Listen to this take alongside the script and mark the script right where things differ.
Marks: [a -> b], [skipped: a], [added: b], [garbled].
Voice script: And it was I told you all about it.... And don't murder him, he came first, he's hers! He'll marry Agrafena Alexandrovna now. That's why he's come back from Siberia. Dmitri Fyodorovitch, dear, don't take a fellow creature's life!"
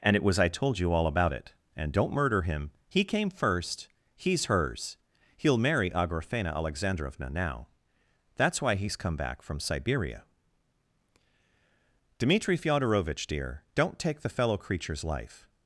And it was I told you all about it.... And don't murder him, he came first, he's hers! He'll marry Agrafena Alexandrovna now. That's why he's come back from Siberia. Dmitri Fyodorovitch, dear, don't take [a -> the] fellow creature's life!"